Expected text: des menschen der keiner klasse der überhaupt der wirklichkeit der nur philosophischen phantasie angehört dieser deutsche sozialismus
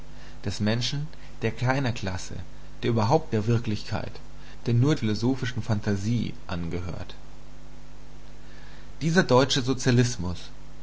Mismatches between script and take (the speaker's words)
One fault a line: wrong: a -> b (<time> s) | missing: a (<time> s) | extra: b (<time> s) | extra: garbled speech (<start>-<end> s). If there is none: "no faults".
no faults